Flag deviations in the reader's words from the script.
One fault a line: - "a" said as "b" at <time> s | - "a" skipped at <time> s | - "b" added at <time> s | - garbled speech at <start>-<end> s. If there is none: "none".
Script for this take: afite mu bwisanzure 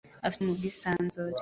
none